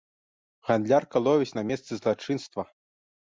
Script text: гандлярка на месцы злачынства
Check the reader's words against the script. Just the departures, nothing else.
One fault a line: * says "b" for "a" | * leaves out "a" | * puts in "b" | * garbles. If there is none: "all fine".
* puts in "ловіць"